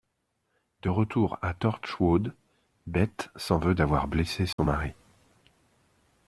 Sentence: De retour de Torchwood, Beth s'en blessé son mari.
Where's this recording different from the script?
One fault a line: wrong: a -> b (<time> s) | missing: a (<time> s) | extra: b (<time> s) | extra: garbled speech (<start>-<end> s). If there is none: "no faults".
wrong: de -> à (1.4 s)
extra: veut d'avoir (3.6 s)